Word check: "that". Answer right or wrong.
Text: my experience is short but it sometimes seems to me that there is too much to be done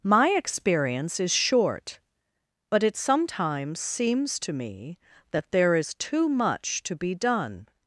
right